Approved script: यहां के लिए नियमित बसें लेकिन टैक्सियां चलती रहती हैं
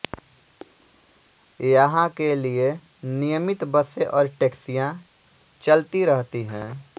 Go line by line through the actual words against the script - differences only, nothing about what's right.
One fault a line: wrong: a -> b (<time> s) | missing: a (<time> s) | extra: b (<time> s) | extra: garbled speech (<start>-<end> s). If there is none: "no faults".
wrong: लेकिन -> और (4.1 s)